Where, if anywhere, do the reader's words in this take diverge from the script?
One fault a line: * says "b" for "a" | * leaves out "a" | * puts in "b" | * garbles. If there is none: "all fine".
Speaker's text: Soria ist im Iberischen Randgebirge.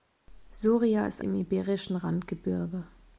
all fine